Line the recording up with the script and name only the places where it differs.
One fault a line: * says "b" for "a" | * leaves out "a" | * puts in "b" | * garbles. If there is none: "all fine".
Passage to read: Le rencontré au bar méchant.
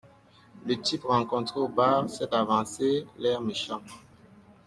* puts in "type"
* puts in "s'est avancé l'air"